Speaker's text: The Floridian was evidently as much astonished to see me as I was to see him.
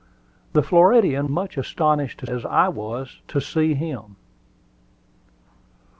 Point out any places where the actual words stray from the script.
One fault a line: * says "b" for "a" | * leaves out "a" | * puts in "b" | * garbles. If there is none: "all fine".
* leaves out "was evidently as"
* leaves out "see me"